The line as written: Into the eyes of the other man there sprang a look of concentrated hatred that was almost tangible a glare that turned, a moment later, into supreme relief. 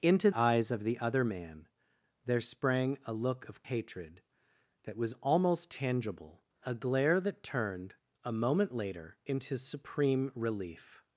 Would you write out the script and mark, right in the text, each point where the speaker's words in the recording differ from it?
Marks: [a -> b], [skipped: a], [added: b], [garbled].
Into [skipped: the] eyes of the other man there sprang a look of [skipped: concentrated] hatred that was almost tangible a glare that turned, a moment later, into supreme relief.